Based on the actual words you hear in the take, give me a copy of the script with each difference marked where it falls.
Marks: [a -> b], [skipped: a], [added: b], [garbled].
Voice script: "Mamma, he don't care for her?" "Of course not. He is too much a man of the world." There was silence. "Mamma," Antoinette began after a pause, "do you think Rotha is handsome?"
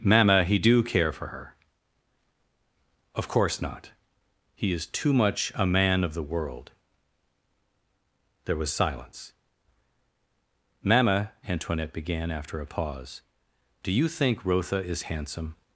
"Mamma, he [don't -> do] care for her?" "Of course not. He is too much a man of the world." There was silence. "Mamma," Antoinette began after a pause, "do you think Rotha is handsome?"